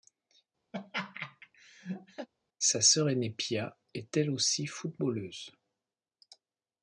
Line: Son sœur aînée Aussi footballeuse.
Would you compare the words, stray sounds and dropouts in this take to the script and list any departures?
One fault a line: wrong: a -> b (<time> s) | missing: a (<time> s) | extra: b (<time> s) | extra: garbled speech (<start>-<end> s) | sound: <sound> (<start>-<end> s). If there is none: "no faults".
sound: laugh (0.7-2.3 s)
wrong: Son -> Sa (2.6 s)
extra: Pia est elle (3.3 s)